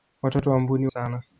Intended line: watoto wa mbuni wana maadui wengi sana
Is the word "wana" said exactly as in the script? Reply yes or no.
no